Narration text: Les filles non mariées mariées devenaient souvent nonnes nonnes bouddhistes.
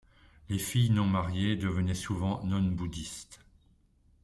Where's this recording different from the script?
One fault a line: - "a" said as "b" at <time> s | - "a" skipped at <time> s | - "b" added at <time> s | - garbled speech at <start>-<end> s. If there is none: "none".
- "mariées" skipped at 1.6 s
- "nonnes" skipped at 2.8 s